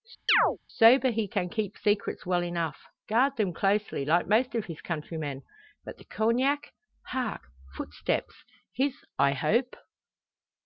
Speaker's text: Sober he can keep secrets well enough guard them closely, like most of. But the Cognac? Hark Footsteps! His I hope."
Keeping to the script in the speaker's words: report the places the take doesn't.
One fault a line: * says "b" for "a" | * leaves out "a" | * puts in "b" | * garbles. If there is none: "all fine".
* puts in "his countrymen"